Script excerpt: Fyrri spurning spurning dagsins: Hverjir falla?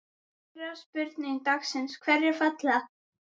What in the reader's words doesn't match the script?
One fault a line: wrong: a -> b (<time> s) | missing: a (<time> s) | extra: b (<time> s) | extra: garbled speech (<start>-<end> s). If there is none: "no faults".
missing: spurning (1.4 s)